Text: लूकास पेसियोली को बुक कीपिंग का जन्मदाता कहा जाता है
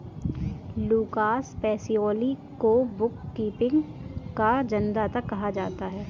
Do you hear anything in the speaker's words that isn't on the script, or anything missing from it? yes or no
no